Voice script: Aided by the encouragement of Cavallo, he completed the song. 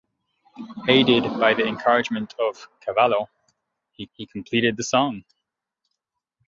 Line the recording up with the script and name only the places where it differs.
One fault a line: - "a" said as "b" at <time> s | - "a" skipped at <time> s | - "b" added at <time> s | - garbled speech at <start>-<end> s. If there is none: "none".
- "he" added at 4.1 s